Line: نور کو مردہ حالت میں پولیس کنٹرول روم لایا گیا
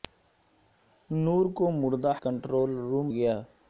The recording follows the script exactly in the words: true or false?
false